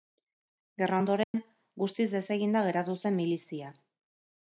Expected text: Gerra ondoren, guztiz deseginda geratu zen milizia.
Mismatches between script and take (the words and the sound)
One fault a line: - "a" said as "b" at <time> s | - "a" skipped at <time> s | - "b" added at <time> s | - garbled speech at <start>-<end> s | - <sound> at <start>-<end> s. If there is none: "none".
- dropout at 1.2-1.3 s